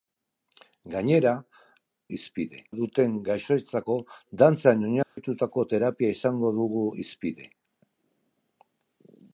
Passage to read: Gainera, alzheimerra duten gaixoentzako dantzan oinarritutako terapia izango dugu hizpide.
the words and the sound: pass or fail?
fail